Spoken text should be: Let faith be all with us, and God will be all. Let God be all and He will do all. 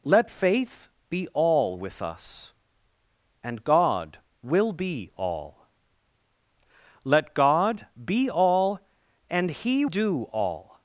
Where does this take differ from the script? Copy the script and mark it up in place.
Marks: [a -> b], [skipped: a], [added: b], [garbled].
Let faith be all with us, and God will be all. Let God be all and He [skipped: will] do all.